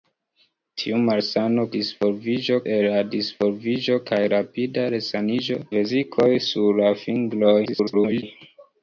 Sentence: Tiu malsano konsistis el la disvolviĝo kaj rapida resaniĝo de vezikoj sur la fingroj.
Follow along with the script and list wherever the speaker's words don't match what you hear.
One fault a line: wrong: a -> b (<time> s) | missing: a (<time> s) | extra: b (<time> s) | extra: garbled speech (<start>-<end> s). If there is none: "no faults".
wrong: konsistis -> disvolviĝo (1.7 s)
missing: de (5.6 s)
extra: garbled speech (7.7-8.2 s)